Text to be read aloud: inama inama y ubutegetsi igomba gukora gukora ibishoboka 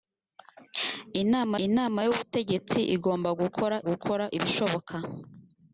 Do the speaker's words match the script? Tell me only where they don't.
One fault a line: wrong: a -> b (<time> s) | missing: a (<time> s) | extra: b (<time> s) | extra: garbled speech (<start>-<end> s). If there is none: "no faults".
no faults